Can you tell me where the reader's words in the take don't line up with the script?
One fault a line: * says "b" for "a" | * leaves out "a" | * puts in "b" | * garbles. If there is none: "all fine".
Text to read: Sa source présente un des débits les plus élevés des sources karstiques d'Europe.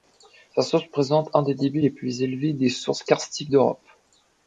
all fine